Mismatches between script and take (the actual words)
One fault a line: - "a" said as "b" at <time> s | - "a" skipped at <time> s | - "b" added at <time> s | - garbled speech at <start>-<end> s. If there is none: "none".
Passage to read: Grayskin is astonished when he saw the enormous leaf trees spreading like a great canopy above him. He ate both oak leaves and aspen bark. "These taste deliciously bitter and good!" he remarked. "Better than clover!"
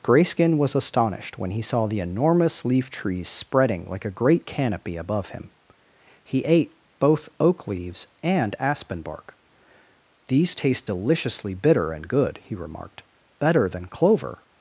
- "is" said as "was" at 0.6 s